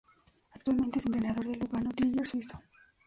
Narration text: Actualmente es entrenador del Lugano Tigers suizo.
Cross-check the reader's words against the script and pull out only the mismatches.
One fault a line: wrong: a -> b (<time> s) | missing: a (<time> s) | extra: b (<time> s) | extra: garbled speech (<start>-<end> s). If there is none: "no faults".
no faults